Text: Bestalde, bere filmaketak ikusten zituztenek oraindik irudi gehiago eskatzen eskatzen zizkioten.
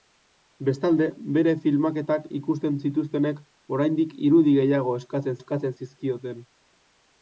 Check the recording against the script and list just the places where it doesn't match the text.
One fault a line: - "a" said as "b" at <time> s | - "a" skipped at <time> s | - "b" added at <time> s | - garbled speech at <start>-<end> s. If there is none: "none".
none